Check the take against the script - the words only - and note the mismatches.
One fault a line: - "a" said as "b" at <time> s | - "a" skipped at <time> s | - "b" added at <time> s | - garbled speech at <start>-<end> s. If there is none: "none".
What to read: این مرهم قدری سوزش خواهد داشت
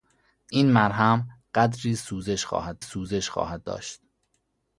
- "سوزش خواهد" added at 2.8 s